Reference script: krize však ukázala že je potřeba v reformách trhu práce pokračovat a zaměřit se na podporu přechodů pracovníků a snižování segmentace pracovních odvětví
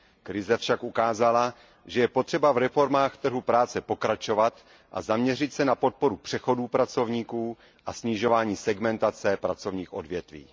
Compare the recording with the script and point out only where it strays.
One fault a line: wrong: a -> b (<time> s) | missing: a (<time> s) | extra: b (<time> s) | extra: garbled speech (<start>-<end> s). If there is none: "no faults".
no faults